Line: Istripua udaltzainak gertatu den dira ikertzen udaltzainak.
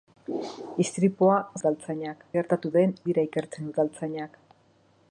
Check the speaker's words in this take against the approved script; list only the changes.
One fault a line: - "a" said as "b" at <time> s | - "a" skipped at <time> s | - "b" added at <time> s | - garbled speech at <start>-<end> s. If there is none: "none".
none